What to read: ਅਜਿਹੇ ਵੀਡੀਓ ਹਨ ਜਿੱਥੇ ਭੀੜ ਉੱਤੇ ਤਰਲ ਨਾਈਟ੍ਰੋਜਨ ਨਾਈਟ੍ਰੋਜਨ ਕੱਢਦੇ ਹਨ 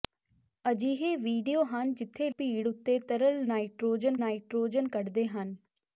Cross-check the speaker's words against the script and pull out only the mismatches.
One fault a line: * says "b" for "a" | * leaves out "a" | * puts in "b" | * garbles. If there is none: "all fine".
all fine